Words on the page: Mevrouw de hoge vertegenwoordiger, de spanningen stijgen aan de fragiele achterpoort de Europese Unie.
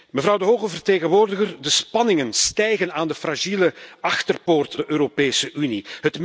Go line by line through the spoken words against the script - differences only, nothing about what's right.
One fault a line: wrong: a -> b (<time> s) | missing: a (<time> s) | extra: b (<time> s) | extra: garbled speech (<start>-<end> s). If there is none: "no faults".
no faults